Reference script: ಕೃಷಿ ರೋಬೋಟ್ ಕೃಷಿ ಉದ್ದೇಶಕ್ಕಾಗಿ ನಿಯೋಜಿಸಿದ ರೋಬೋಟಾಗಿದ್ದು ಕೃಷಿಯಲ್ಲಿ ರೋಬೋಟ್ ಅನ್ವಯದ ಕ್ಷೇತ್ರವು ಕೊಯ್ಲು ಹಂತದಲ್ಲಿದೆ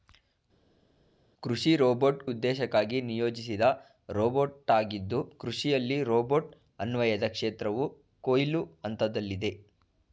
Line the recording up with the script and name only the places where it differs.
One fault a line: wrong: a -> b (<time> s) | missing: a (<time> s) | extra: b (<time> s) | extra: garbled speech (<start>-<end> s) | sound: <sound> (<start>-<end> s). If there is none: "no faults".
missing: ಕೃಷಿ (2.2 s)